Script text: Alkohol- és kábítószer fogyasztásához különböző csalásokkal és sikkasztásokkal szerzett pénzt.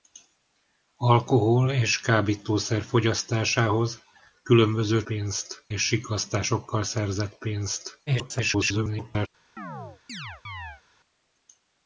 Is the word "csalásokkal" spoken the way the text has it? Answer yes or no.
no